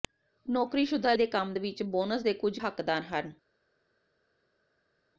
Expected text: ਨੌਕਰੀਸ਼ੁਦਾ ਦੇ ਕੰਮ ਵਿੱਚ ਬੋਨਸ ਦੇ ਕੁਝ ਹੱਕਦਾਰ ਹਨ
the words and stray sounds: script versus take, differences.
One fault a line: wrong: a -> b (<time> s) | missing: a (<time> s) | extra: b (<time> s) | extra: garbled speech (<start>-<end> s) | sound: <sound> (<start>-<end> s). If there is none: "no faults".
no faults